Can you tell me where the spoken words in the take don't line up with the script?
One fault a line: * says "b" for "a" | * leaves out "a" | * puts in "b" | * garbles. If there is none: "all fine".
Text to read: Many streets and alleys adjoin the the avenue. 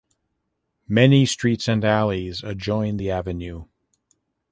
* leaves out "the"